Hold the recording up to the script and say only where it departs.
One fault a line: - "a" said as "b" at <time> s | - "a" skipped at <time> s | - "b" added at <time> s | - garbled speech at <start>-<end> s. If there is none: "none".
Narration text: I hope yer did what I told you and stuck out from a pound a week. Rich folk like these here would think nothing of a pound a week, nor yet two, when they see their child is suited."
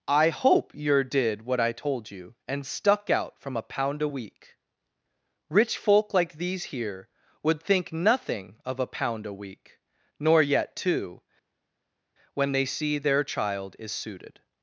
none